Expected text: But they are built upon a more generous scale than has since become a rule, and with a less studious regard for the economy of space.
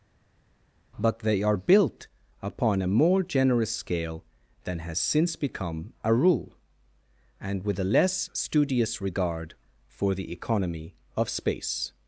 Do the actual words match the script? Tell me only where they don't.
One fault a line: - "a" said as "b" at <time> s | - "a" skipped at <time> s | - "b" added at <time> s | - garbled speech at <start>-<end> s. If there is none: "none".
none